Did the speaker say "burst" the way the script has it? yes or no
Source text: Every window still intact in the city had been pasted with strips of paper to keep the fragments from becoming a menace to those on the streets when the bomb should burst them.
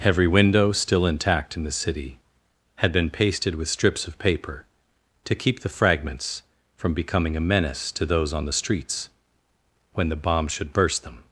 yes